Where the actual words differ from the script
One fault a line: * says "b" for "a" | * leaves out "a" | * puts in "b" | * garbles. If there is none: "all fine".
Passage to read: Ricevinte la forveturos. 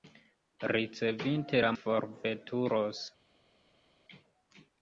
all fine